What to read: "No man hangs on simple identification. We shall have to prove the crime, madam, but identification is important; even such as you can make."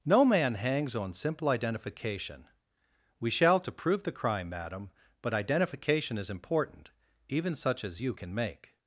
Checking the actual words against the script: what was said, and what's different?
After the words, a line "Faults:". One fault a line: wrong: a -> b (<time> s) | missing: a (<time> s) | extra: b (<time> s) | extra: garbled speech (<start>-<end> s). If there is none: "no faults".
"No man hangs on simple identification. We shall to prove the crime, madam, but identification is important; even such as you can make."
Faults:
missing: have (3.6 s)